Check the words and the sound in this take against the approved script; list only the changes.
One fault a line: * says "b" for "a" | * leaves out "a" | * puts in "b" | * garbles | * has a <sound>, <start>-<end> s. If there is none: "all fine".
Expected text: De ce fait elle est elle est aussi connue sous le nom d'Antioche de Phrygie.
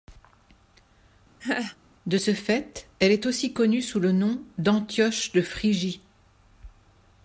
* has a laugh, 1.4-1.8 s
* leaves out "elle est"